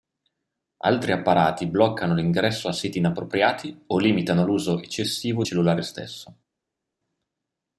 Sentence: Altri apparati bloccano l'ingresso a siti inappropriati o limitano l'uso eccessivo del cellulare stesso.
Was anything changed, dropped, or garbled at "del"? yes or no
yes